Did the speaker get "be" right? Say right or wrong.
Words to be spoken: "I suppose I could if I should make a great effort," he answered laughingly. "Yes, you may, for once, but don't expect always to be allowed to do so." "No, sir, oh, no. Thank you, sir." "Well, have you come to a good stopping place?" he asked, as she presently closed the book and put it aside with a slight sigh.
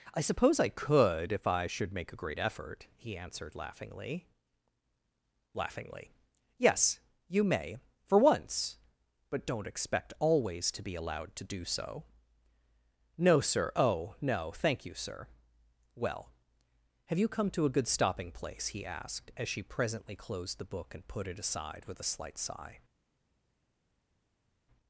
right